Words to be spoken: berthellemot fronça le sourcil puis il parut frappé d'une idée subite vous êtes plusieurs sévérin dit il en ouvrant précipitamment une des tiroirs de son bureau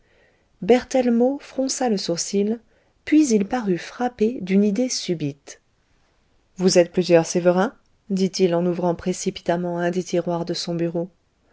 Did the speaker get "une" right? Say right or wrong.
wrong